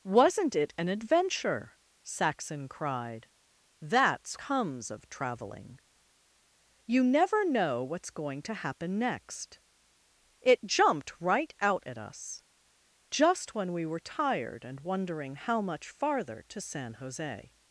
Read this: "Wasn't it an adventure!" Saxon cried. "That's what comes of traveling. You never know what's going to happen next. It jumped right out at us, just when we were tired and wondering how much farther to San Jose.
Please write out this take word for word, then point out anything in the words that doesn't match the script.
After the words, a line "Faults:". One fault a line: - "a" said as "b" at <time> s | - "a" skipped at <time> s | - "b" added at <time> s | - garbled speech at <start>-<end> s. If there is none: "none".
"Wasn't it an adventure!" Saxon cried. "That's comes of traveling. You never know what's going to happen next. It jumped right out at us, just when we were tired and wondering how much farther to San Jose.
Faults:
- "what" skipped at 4.3 s